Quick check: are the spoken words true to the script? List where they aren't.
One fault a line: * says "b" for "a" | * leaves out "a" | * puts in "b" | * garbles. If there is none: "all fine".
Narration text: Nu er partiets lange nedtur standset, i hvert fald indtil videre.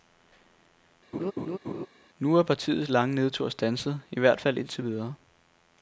all fine